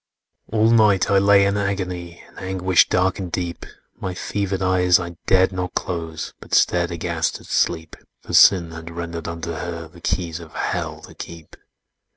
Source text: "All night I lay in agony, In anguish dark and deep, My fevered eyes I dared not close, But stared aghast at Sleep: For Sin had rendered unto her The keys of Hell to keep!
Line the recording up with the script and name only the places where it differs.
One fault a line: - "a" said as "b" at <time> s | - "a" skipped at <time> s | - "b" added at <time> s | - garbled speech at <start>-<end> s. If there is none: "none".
none